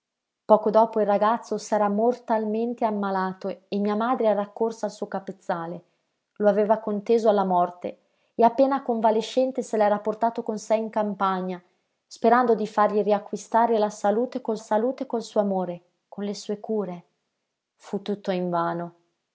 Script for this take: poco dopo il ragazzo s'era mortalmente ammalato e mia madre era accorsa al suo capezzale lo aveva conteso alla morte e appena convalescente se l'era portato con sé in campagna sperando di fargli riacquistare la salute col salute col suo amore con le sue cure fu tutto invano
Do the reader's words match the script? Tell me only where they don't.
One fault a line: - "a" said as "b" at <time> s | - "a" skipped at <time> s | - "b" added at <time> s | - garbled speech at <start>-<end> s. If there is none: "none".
none